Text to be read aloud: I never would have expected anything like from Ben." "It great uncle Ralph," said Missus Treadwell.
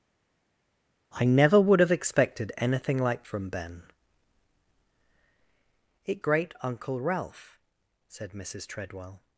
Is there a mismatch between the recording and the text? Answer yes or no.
no